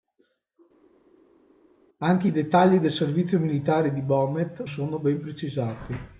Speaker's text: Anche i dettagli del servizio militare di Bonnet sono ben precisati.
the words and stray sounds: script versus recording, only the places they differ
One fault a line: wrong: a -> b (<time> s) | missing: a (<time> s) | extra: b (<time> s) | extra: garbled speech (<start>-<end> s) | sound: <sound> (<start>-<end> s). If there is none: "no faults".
no faults